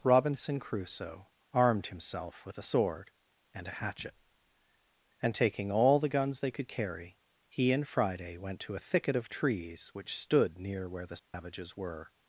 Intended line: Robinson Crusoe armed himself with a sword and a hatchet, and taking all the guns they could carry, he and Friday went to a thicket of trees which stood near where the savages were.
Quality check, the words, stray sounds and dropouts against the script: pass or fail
fail